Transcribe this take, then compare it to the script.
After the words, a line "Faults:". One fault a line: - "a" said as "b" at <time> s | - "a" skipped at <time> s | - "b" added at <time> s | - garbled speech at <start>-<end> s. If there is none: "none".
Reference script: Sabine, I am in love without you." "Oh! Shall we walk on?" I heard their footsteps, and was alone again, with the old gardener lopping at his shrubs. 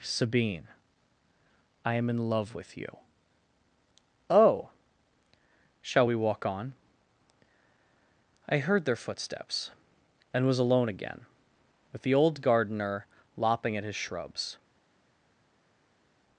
Sabine, I am in love with you." "Oh! Shall we walk on?" I heard their footsteps, and was alone again, with the old gardener lopping at his shrubs.
Faults:
- "without" said as "with" at 2.5 s